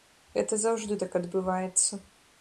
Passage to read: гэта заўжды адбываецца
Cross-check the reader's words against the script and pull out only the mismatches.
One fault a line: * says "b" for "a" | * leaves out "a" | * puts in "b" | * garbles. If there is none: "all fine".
* puts in "так"